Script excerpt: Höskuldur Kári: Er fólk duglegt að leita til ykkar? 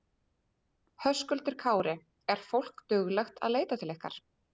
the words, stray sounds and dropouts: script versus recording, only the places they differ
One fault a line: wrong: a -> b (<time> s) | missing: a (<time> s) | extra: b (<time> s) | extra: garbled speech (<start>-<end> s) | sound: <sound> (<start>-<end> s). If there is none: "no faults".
no faults